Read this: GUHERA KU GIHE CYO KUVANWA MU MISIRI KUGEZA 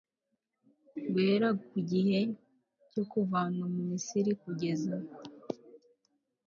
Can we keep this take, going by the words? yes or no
yes